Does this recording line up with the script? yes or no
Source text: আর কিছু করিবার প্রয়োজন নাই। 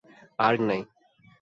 no